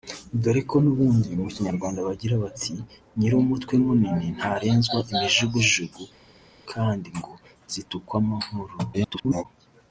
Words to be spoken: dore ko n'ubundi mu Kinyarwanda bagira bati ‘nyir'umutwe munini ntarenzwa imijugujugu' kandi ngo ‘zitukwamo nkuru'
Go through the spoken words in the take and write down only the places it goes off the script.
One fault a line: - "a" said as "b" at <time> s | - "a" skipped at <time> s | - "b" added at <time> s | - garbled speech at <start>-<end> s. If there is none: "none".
- garbled speech at 8.9-9.5 s